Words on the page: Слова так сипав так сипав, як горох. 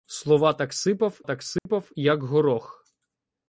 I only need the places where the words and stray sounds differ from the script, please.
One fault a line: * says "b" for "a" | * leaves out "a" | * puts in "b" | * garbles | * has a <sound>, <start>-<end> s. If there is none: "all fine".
* has a dropout, 1.6-1.7 s